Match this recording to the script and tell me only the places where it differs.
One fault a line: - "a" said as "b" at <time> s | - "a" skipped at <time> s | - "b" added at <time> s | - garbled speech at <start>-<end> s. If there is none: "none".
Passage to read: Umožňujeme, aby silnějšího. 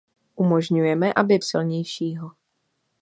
none